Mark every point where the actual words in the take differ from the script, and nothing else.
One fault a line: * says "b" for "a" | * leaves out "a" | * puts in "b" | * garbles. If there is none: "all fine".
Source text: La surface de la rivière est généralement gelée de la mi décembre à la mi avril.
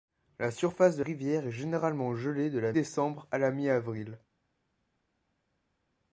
* leaves out "la"
* leaves out "mi"